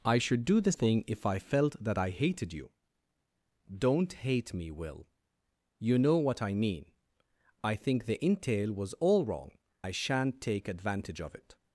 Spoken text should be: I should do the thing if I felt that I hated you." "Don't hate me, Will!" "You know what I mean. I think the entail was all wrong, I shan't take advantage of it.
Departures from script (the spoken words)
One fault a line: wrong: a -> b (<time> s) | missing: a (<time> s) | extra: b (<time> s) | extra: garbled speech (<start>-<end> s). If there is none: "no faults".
no faults